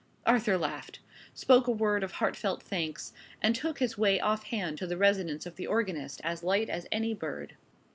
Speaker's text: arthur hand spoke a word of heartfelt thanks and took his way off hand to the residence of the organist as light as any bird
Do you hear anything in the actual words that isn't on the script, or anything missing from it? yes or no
yes